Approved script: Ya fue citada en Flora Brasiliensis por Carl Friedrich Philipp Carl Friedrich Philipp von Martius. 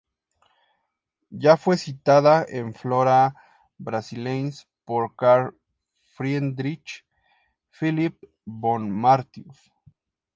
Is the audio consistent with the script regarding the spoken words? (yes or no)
no